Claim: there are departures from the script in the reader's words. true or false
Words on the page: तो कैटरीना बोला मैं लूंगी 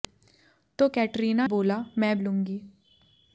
false